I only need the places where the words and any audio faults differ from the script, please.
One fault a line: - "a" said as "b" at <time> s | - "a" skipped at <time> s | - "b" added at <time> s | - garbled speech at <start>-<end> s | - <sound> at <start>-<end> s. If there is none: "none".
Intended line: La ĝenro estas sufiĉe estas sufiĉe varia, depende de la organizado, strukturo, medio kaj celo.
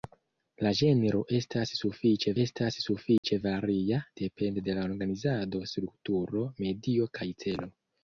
- dropout at 3.2-3.2 s